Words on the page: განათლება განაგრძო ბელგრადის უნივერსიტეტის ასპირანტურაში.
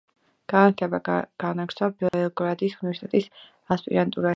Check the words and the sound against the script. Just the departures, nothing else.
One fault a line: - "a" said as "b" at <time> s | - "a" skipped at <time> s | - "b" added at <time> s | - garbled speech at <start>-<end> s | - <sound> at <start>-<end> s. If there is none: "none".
- dropout at 2.1-2.1 s